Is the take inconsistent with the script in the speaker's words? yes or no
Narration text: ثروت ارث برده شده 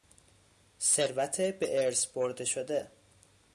yes